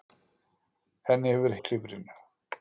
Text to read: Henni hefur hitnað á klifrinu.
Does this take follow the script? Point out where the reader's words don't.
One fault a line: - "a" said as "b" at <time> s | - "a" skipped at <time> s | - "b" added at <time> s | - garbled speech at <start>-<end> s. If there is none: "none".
- "hitnað" skipped at 1.6 s